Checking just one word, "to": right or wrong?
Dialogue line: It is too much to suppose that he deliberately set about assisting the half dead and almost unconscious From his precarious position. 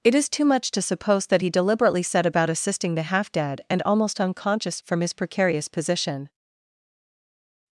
right